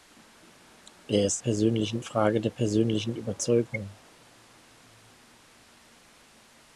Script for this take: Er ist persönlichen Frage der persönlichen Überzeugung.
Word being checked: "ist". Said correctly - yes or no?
yes